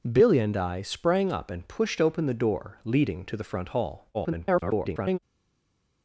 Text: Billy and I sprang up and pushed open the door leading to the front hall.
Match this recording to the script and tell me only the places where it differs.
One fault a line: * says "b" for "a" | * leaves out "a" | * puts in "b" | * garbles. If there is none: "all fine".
* garbles